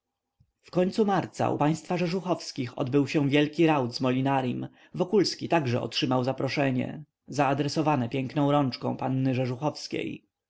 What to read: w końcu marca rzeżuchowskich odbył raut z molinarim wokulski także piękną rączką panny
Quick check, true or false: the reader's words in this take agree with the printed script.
false